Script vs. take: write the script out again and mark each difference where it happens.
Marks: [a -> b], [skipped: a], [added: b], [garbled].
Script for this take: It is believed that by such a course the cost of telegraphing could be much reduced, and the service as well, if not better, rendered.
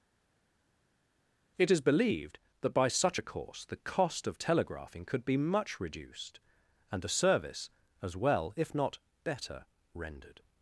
It is believed that by such a course the cost of telegraphing could be much reduced, and the service as well, if not better, rendered.